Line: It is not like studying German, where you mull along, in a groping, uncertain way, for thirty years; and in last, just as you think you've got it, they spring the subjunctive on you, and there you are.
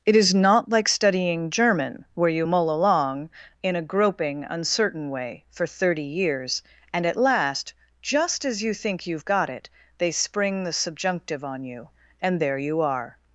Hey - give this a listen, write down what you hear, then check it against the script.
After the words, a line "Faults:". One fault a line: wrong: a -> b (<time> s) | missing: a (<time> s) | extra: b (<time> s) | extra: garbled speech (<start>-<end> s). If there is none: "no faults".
It is not like studying German, where you mull along, in a groping, uncertain way, for thirty years; and at last, just as you think you've got it, they spring the subjunctive on you, and there you are.
Faults:
wrong: in -> at (7.0 s)